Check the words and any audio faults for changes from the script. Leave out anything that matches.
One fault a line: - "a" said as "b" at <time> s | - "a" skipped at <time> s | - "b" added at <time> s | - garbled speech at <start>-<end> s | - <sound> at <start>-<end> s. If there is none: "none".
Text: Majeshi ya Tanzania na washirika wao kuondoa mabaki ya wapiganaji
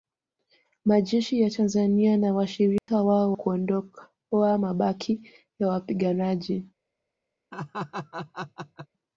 - dropout at 2.8-2.9 s
- laugh at 7.5-8.9 s